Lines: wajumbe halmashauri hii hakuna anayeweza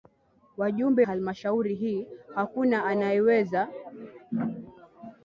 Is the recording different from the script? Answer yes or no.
no